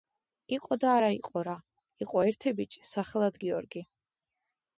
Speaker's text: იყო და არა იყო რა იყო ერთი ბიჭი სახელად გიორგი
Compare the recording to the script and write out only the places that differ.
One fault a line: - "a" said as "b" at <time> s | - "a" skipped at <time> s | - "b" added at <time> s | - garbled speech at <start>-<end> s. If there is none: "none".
none